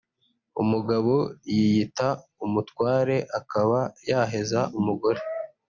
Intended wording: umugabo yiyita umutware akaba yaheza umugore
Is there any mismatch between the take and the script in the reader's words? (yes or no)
no